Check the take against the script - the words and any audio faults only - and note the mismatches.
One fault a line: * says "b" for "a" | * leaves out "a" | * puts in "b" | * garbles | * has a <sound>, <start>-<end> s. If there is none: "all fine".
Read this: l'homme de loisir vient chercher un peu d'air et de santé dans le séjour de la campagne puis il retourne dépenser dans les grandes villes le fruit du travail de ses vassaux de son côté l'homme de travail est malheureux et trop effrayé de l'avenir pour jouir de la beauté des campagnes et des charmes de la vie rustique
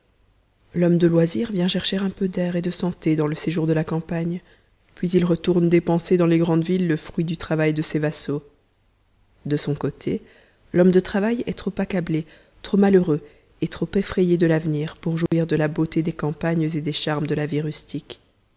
* puts in "trop accablé trop"
* has a dropout, 15.3-15.3 s